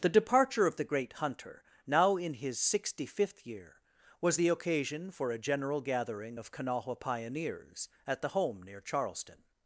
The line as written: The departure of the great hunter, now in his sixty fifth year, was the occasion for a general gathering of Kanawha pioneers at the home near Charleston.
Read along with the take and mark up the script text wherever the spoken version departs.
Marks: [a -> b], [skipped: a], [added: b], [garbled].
The departure of the great hunter, now in his sixty fifth year, was the occasion for a general gathering of Kanawha pioneers at the home near Charleston.